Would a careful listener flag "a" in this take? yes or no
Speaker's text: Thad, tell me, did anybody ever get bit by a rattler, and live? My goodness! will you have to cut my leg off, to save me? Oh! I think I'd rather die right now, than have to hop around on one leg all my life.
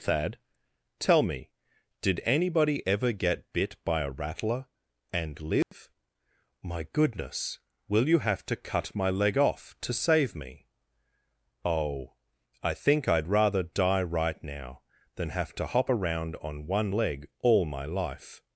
no